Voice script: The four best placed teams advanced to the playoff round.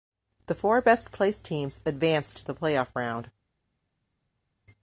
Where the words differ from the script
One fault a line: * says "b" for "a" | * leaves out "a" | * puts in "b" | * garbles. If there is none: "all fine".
all fine